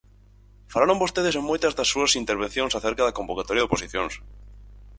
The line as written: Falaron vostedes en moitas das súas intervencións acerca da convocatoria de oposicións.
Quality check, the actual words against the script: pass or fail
pass